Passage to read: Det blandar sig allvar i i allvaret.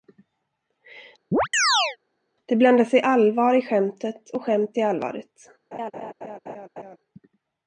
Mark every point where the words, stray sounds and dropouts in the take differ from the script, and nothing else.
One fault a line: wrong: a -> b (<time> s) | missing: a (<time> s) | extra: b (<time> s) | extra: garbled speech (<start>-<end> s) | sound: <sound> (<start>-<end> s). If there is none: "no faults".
sound: chirp (1.3-2.0 s)
extra: skämtet och skämt (3.6 s)
sound: laugh (5.7-7.0 s)